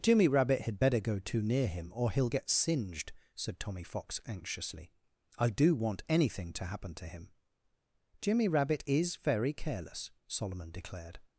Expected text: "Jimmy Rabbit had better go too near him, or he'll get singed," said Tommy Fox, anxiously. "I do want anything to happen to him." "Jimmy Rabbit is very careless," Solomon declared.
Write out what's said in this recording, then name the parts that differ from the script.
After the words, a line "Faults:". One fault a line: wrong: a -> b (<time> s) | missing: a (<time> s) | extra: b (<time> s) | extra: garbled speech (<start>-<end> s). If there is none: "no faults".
"Jimmy Rabbit had better go too near him, or he'll get singed," said Tommy Fox, anxiously. "I do want anything to happen to him." "Jimmy Rabbit is very careless," Solomon declared.
Faults:
no faults